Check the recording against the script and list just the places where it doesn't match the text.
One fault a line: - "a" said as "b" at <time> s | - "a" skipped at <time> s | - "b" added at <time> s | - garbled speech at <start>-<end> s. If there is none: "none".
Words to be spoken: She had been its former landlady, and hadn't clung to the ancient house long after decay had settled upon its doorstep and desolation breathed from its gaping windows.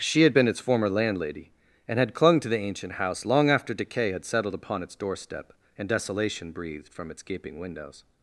- "hadn't" said as "had" at 2.0 s